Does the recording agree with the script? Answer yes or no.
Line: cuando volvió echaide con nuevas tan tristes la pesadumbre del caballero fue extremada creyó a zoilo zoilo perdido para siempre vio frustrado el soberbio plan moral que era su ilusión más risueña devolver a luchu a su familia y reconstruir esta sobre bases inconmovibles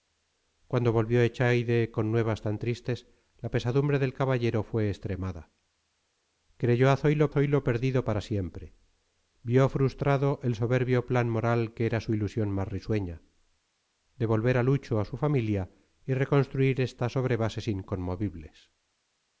yes